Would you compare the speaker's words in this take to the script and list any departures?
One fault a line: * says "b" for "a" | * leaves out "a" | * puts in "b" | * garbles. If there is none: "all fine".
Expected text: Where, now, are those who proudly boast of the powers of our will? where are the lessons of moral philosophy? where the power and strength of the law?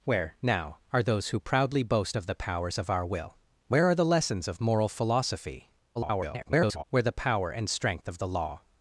* garbles